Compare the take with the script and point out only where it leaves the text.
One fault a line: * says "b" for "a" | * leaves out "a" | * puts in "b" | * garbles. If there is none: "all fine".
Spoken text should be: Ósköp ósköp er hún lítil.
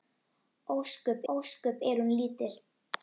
all fine